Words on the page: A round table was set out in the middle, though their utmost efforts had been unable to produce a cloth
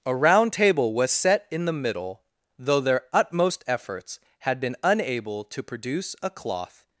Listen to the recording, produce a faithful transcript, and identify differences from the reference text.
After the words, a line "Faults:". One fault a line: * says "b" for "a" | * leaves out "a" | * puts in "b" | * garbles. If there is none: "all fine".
A round table was set in the middle, though their utmost efforts had been unable to produce a cloth
Faults:
* leaves out "out"